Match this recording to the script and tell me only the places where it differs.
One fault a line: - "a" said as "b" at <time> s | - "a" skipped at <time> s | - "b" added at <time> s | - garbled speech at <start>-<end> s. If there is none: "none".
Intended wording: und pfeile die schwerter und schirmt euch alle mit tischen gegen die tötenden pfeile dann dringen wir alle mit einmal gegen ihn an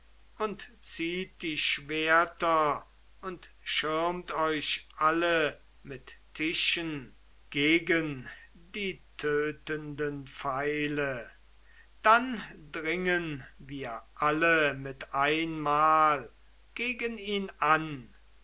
- "pfeile" said as "zieht" at 0.8 s